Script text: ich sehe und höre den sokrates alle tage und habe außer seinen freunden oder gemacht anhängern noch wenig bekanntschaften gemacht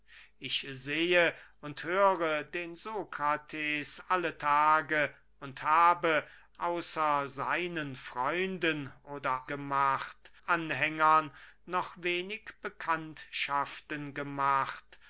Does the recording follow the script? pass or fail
pass